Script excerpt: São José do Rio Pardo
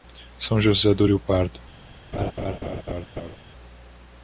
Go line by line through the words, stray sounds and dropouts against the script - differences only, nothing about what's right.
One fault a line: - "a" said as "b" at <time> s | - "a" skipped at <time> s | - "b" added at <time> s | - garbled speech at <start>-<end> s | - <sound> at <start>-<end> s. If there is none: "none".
- laugh at 2.1-3.4 s